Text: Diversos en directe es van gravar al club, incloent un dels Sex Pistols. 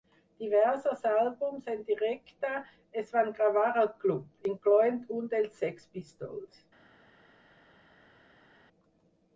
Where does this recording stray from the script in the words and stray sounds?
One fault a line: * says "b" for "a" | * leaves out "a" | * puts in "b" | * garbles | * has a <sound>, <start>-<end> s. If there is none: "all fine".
* puts in "àlbums"